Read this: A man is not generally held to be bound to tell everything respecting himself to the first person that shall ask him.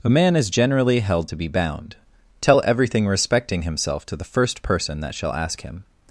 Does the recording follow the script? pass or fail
fail